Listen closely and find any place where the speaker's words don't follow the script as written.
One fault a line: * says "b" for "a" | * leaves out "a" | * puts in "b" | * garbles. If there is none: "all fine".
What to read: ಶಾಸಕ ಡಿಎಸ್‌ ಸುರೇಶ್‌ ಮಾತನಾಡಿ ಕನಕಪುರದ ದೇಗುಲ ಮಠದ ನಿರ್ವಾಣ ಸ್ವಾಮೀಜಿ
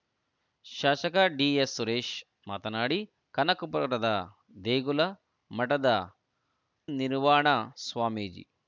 all fine